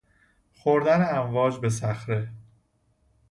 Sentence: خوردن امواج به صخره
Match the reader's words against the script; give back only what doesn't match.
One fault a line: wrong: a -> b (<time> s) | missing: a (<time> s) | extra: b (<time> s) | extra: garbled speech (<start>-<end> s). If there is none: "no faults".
no faults